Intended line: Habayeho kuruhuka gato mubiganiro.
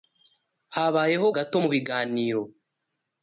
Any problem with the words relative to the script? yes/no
yes